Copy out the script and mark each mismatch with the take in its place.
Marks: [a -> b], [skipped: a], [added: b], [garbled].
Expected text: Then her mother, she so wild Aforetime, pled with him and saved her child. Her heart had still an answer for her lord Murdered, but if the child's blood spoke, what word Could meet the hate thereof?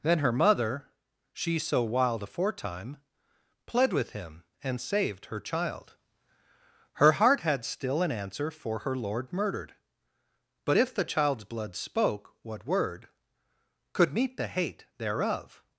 Then her mother, she so wild Aforetime, pled with him and saved her child. Her heart had still an answer for her lord Murdered, but if the child's blood spoke, what word Could meet the hate thereof?